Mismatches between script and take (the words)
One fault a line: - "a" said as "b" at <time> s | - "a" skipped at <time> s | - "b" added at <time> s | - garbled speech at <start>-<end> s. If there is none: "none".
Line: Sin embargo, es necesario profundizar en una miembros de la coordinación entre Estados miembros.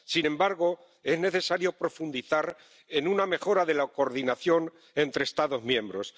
- "miembros" said as "mejora" at 3.3 s